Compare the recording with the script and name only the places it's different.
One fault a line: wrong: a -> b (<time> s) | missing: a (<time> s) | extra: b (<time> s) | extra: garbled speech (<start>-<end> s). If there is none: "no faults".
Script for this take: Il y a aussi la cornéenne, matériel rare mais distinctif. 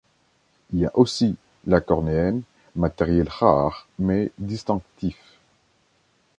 no faults